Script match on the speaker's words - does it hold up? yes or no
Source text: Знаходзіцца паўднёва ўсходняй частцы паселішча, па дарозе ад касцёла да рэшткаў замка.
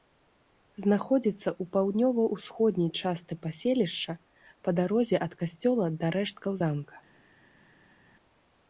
no